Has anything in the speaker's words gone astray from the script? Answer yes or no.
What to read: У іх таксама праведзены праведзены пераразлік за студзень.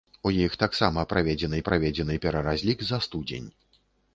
no